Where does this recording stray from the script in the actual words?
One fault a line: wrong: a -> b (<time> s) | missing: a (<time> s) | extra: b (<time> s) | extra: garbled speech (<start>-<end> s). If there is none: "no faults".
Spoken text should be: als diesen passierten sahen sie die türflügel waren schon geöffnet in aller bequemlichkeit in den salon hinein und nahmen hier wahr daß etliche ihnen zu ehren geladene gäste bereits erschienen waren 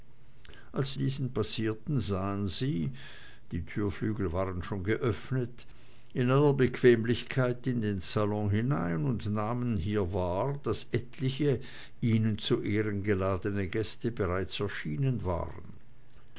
no faults